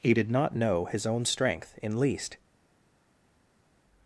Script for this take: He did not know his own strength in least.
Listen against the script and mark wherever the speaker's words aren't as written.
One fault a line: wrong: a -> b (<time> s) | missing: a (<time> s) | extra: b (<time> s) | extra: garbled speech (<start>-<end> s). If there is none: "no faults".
no faults